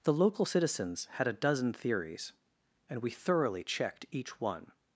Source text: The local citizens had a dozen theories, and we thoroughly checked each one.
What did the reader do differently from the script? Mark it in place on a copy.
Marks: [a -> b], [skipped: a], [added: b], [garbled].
The local citizens had a dozen theories, and we thoroughly checked each one.